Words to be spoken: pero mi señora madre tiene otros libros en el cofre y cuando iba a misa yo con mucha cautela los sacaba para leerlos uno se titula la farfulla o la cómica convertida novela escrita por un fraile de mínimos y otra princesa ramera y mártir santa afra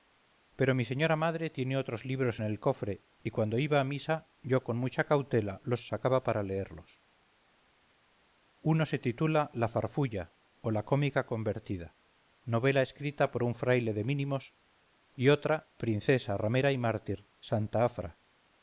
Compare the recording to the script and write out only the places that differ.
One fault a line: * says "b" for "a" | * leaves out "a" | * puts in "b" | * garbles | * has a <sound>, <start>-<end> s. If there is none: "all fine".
all fine